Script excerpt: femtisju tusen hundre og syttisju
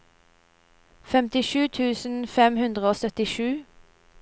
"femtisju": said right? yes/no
yes